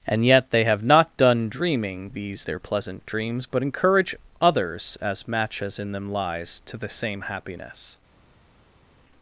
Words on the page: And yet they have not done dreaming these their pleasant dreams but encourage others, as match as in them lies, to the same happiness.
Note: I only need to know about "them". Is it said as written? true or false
true